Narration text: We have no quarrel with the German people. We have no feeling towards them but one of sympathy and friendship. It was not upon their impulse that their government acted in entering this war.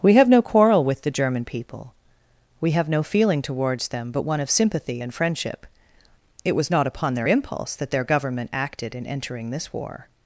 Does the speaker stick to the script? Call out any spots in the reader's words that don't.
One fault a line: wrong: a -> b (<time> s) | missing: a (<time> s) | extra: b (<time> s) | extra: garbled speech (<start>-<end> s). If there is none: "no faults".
no faults